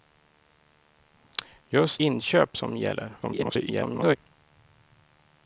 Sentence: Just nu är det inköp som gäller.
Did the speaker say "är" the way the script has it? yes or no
no